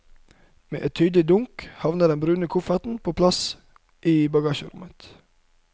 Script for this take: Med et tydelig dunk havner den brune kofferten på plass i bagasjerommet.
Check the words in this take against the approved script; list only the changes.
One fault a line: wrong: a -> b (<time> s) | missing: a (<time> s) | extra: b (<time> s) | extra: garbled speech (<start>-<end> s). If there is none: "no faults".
no faults